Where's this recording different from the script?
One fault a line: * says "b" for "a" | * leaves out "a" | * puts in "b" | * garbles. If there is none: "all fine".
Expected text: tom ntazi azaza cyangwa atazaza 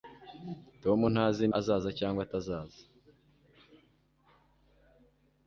all fine